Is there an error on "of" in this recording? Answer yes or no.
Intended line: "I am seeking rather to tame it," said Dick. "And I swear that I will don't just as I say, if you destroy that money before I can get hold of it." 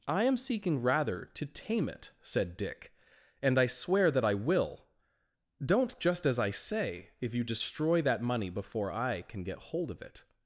no